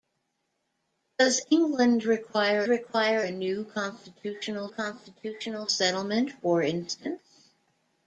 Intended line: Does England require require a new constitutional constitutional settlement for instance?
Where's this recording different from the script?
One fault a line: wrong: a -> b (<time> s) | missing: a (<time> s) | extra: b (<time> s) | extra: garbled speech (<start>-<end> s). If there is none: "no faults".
no faults